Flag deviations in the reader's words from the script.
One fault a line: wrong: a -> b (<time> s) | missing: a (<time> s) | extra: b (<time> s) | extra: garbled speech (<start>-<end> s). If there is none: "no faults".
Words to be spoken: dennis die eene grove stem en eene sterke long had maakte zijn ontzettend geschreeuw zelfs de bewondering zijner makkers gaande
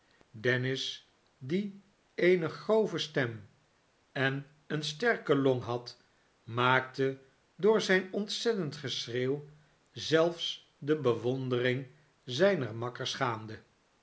extra: door (7.5 s)